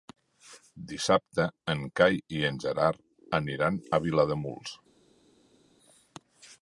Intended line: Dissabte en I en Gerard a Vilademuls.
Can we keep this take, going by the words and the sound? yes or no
no